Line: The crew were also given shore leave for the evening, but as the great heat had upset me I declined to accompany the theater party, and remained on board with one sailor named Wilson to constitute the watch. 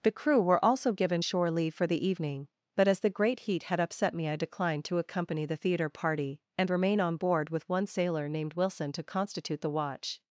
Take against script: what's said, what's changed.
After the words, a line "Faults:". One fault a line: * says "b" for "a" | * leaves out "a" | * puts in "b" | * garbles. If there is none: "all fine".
The crew were also given shore leave for the evening, but as the great heat had upset me I declined to accompany the theater party, and remain on board with one sailor named Wilson to constitute the watch.
Faults:
* says "remain" for "remained"